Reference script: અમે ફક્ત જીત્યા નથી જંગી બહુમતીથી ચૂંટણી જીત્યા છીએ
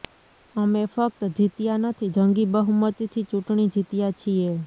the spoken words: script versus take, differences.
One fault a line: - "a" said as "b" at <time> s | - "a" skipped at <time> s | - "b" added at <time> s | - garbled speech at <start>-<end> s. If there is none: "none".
none